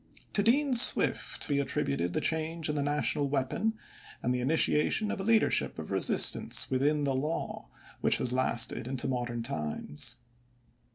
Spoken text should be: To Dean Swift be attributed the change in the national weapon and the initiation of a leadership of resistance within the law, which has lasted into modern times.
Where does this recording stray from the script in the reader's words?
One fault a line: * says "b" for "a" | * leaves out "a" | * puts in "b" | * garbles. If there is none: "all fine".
all fine